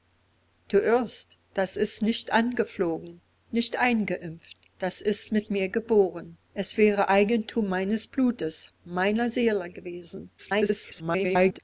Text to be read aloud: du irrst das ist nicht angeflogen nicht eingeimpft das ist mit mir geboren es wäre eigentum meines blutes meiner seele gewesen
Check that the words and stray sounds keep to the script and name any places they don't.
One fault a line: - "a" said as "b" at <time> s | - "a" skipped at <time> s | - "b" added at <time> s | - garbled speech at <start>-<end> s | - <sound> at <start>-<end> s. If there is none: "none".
- garbled speech at 10.4-11.6 s